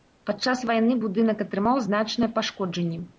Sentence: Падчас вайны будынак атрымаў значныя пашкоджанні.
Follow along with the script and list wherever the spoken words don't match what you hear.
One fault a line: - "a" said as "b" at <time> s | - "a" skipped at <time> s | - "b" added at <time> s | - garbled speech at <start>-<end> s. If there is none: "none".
none